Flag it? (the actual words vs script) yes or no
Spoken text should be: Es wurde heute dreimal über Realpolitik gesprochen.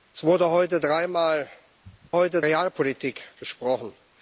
yes